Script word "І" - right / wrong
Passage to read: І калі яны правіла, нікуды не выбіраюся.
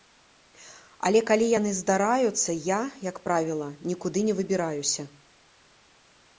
wrong